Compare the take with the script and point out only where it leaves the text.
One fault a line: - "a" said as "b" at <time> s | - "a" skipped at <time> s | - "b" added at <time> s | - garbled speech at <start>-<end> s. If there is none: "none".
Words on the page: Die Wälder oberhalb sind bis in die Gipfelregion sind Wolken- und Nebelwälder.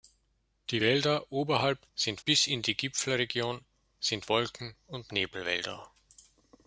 none